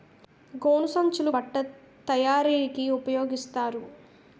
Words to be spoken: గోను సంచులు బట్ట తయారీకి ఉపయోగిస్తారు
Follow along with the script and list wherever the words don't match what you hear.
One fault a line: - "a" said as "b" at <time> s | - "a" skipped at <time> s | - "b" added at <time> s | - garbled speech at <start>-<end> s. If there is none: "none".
none